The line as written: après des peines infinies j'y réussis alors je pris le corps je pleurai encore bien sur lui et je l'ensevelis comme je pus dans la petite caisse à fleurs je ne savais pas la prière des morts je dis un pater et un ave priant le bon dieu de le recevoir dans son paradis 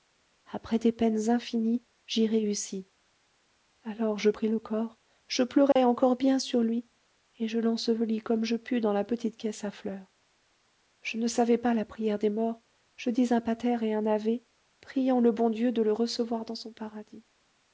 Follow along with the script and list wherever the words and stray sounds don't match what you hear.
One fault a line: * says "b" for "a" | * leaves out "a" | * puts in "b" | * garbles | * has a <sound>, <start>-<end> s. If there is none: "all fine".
* has a dropout, 5.7-5.8 s